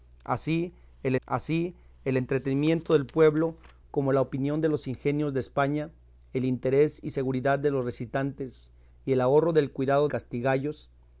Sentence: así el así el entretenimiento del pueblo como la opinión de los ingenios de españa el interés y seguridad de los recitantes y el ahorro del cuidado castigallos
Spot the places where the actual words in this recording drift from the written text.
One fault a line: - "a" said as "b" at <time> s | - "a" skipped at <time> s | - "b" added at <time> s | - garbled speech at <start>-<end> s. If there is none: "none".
none